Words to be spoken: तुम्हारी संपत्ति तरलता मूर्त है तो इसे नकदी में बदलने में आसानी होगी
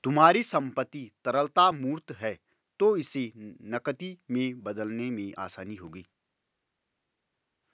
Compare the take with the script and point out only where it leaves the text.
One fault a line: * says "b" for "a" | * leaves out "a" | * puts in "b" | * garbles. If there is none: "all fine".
all fine